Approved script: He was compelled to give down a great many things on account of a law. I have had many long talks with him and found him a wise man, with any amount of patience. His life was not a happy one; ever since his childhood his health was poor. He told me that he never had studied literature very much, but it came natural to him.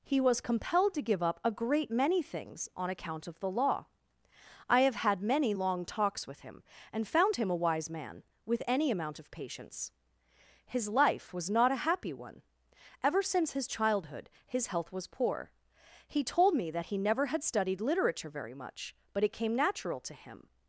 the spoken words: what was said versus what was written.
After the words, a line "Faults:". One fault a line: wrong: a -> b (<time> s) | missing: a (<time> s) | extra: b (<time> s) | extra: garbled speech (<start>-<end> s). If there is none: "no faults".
He was compelled to give up a great many things on account of the law. I have had many long talks with him and found him a wise man, with any amount of patience. His life was not a happy one; ever since his childhood his health was poor. He told me that he never had studied literature very much, but it came natural to him.
Faults:
wrong: down -> up (1.2 s)
wrong: a -> the (3.4 s)